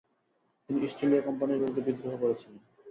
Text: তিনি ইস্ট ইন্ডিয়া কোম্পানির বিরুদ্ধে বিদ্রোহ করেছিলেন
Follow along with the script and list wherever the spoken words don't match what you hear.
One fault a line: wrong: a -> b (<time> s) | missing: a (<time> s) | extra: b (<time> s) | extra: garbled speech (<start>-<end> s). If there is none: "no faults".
no faults